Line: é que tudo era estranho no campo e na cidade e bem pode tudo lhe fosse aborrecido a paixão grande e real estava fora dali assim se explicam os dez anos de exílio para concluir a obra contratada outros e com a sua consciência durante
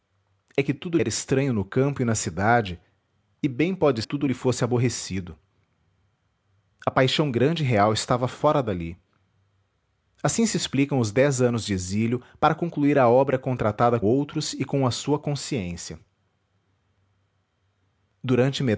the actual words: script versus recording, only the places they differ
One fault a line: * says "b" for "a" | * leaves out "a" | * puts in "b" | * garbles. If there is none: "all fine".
all fine